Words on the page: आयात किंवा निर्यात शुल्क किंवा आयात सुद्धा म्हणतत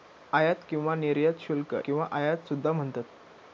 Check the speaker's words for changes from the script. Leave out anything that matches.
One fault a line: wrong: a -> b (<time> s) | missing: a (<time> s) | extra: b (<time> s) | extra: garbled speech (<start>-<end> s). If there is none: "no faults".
no faults